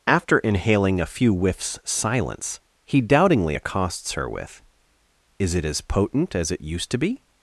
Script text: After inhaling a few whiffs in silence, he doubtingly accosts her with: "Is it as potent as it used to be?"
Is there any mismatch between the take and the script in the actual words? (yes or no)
yes